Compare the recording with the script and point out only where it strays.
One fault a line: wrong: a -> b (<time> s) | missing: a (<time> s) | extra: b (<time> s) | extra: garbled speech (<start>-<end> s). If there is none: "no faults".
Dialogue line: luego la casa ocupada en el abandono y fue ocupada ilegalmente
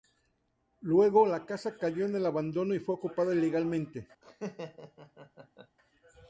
wrong: ocupada -> cayó (1.8 s)